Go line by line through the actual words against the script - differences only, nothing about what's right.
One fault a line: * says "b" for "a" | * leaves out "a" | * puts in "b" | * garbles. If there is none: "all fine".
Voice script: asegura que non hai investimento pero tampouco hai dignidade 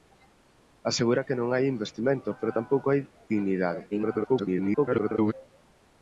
* garbles